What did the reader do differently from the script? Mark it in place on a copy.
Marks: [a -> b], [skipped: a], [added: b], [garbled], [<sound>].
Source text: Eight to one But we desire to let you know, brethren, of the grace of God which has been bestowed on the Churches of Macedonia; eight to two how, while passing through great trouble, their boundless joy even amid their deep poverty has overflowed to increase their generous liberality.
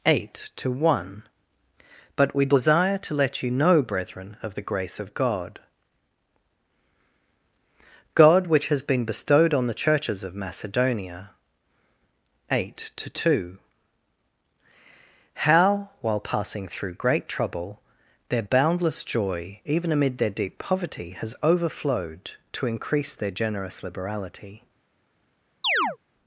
Eight to one But we desire to let you know, brethren, of the grace of God [added: God] which has been bestowed on the Churches of Macedonia; eight to two how, while passing through great trouble, their boundless joy even amid their deep poverty has overflowed to increase their generous liberality. [chirp]